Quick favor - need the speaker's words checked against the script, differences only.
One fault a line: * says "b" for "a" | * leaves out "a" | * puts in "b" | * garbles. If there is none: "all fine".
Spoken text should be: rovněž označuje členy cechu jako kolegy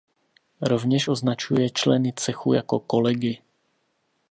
all fine